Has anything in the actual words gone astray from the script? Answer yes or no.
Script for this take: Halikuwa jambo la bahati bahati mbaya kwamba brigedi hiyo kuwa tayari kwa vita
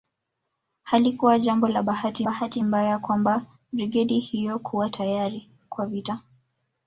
no